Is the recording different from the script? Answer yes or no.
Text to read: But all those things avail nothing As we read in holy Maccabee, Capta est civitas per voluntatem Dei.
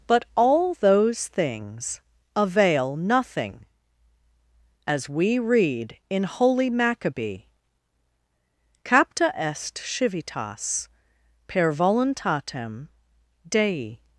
no